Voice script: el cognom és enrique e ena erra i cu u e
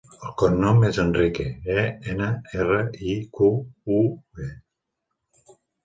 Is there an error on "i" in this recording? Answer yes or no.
no